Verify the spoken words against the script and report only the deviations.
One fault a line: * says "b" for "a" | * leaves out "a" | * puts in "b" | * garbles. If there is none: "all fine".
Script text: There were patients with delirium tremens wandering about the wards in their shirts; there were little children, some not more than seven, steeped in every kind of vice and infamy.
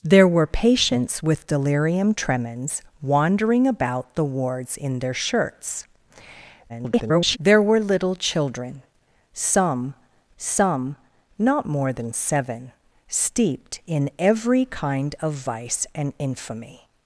* garbles
* puts in "some"